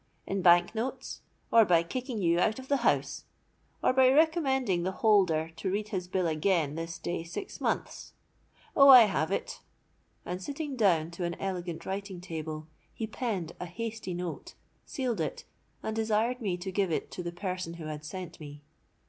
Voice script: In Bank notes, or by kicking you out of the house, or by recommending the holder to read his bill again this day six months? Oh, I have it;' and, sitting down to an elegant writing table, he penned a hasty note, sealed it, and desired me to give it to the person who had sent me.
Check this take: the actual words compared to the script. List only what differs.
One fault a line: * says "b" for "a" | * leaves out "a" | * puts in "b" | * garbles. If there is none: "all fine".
all fine